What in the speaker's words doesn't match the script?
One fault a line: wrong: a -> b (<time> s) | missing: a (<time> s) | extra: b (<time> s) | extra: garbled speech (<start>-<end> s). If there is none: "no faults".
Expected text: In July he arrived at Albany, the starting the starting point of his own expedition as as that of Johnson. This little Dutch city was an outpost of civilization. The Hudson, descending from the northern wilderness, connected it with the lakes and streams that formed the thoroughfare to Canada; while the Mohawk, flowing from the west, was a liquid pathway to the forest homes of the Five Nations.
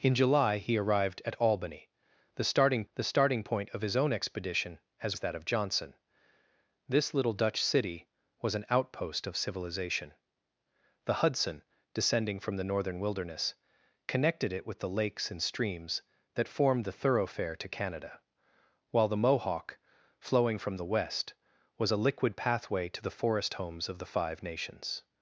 no faults